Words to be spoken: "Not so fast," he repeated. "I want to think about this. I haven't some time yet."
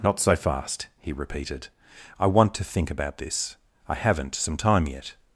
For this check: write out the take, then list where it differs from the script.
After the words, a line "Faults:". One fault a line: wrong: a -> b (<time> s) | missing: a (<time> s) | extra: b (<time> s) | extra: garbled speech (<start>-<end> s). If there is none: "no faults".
"Not so fast," he repeated. "I want to think about this. I haven't some time yet."
Faults:
no faults